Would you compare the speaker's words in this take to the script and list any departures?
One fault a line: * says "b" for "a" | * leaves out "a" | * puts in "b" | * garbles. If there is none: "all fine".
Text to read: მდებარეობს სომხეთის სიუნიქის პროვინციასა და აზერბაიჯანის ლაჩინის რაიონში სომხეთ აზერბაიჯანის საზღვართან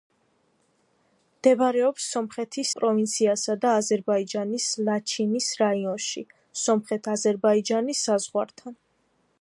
* leaves out "სიუნიქის"